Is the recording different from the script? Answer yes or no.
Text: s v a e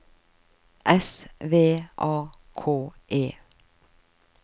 yes